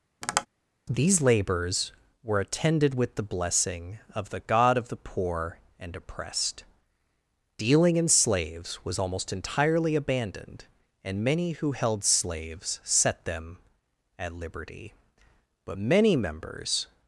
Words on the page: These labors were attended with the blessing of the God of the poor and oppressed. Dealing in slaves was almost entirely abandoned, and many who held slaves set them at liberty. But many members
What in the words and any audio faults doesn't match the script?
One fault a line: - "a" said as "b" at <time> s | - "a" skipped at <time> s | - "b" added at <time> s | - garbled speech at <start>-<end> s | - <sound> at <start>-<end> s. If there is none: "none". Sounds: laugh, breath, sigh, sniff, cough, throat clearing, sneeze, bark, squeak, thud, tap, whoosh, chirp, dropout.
- tap at 0.2-0.5 s